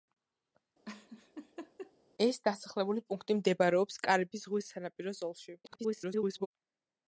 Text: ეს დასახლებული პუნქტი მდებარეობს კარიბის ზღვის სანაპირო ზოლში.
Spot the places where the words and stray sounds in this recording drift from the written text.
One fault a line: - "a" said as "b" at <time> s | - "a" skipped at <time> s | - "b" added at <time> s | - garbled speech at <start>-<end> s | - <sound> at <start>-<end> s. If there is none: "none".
- laugh at 0.9-1.9 s
- garbled speech at 5.6-6.5 s